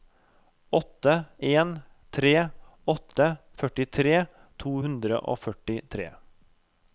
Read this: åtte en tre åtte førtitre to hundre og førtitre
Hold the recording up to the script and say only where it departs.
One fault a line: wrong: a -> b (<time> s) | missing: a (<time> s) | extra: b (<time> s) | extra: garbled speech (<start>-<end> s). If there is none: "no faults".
no faults